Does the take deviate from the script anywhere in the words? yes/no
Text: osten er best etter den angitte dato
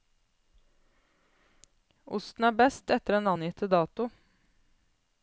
no